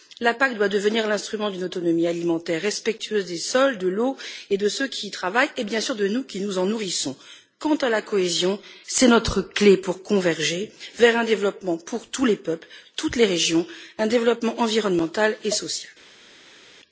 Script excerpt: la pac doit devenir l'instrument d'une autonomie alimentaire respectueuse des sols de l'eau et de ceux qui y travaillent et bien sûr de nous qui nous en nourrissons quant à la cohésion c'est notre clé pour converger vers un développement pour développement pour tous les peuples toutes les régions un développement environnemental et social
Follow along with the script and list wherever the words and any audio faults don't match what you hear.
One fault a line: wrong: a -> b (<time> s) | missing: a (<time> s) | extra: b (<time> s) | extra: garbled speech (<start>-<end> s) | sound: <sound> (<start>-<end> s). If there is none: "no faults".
missing: développement pour (12.1 s)